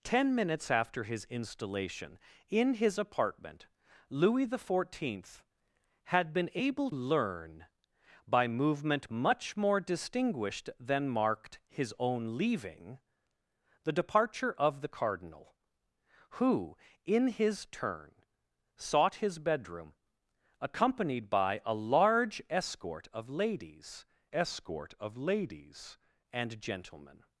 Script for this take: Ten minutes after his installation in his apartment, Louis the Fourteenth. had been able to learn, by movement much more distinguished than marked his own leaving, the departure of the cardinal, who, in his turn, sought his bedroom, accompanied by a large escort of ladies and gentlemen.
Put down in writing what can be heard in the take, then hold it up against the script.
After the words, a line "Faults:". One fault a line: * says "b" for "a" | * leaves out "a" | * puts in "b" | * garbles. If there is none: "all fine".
Ten minutes after his installation in his apartment, Louis the Fourteenth. had been able learn, by movement much more distinguished than marked his own leaving, the departure of the cardinal, who, in his turn, sought his bedroom, accompanied by a large escort of ladies escort of ladies and gentlemen.
Faults:
* leaves out "to"
* puts in "escort of ladies"